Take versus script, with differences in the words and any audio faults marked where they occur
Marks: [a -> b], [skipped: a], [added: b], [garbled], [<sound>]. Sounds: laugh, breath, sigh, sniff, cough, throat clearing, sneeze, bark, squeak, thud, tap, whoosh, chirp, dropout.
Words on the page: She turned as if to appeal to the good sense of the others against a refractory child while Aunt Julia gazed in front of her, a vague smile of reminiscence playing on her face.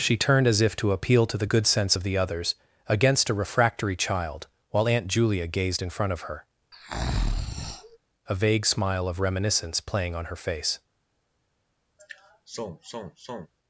She turned as if to appeal to the good sense of the others against a refractory child while Aunt Julia gazed in front of her, [breath] a vague smile of reminiscence playing on her face. [sigh]